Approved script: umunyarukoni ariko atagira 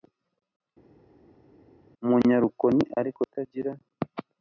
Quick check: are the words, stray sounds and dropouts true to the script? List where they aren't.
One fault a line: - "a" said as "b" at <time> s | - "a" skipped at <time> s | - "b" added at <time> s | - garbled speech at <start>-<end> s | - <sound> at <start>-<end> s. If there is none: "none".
none